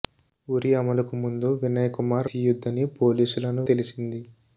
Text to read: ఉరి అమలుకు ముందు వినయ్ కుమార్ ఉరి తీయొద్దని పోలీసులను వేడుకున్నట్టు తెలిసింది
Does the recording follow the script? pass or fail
fail